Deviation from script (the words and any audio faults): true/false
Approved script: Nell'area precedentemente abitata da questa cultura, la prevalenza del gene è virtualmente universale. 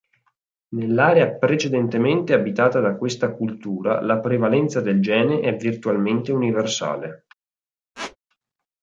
true